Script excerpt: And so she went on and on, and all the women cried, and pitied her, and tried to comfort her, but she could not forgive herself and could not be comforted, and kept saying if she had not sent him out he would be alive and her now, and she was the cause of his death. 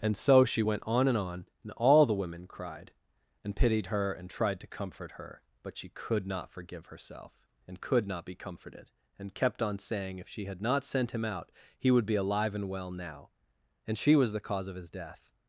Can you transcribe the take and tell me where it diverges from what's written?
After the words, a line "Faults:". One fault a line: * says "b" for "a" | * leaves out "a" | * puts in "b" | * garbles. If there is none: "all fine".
And so she went on and on, and all the women cried, and pitied her, and tried to comfort her, but she could not forgive herself and could not be comforted, and kept on saying if she had not sent him out he would be alive and well now, and she was the cause of his death.
Faults:
* puts in "on"
* says "well" for "her"